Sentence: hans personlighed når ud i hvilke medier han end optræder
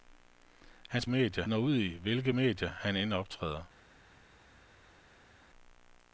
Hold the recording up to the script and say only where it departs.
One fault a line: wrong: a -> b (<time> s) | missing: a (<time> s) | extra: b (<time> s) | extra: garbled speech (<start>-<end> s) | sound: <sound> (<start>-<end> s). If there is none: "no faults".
wrong: personlighed -> medier (1.1 s)